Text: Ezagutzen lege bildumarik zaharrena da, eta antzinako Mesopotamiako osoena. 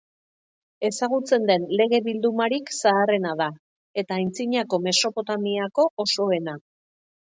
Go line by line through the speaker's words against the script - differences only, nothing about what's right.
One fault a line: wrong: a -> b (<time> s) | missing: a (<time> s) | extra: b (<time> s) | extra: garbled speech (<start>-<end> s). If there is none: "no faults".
extra: den (1.5 s)